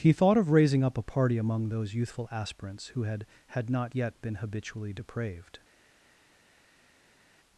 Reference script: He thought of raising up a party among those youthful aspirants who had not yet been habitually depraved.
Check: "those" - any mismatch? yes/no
no